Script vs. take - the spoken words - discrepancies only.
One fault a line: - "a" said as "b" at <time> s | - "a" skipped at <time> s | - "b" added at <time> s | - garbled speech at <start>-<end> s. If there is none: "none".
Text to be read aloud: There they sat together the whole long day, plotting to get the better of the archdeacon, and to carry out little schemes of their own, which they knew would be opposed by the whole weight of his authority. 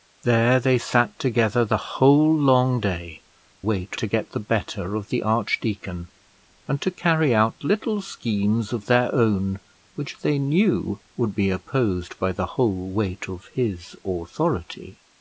- "plotting" said as "weight" at 3.6 s